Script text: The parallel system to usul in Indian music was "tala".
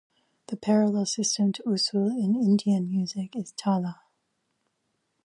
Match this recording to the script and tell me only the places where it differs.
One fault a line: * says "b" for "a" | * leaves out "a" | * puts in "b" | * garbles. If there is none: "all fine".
* says "is" for "was"